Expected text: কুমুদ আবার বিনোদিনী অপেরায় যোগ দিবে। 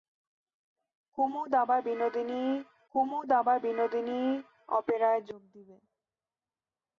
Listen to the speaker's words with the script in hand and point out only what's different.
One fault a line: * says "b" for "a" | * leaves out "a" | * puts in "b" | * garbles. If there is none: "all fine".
* puts in "কুমুদ আবার বিনোদিনী"